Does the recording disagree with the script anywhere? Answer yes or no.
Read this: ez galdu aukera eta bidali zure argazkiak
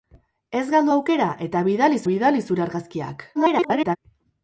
yes